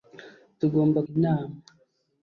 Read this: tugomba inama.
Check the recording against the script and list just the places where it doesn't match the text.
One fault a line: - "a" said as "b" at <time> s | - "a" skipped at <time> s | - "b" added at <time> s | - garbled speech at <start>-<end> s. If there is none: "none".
none